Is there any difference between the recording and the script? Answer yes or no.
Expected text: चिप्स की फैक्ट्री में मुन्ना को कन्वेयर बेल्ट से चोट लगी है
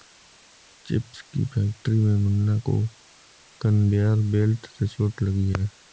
no